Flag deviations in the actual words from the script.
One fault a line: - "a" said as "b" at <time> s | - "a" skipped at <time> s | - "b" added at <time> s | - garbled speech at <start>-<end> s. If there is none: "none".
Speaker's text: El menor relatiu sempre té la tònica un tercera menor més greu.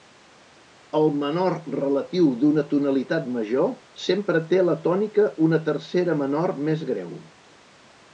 - "d'una tonalitat major" added at 2.4 s
- "un" said as "una" at 5.5 s